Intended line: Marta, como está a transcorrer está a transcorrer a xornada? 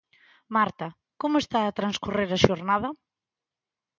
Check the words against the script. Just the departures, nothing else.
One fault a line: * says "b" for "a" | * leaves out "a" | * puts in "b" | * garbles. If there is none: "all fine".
* leaves out "está a transcorrer"